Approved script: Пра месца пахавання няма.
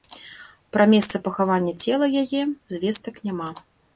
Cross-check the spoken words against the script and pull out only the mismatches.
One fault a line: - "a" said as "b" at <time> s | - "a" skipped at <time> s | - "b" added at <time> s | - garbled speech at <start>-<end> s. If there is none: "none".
- "цела яе звестак" added at 1.9 s